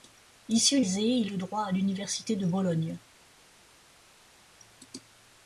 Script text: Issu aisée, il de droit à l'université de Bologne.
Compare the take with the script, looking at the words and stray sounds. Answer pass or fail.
pass